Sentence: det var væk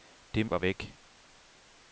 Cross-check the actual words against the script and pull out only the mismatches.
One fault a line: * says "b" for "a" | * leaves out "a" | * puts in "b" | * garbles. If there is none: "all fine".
all fine